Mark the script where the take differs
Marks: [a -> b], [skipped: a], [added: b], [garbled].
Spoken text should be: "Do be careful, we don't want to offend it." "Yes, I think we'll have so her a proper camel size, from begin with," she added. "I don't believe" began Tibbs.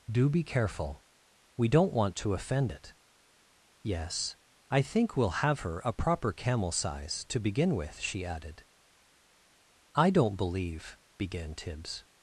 "Do be careful, we don't want to offend it." "Yes, I think we'll have [skipped: so] her a proper camel size, [from -> to] begin with," she added. "I don't believe" began Tibbs.